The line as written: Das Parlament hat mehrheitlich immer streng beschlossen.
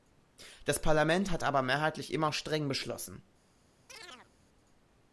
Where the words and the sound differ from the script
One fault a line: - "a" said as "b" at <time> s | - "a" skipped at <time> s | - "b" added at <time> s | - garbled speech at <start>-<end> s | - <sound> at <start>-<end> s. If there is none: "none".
- "aber" added at 1.4 s
- chirp at 3.9-4.3 s